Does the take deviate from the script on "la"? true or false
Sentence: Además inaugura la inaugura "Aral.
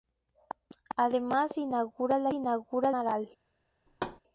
false